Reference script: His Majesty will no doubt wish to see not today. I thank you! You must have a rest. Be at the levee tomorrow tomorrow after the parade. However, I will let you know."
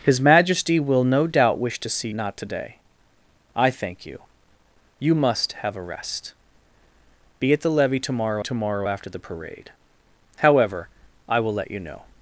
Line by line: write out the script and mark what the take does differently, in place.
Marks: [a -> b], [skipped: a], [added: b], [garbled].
His Majesty will no doubt wish to see not today. I thank you! You must have a rest. Be at the levee tomorrow tomorrow after the parade. However, I will let you know."